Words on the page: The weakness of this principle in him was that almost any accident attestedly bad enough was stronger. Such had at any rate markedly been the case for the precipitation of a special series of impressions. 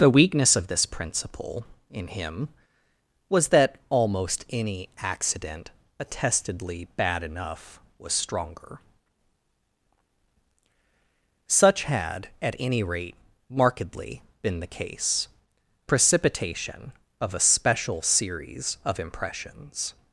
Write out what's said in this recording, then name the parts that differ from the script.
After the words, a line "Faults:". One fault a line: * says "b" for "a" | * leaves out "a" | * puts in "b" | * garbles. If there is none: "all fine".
The weakness of this principle in him was that almost any accident attestedly bad enough was stronger. Such had at any rate markedly been the case precipitation of a special series of impressions.
Faults:
* leaves out "for the"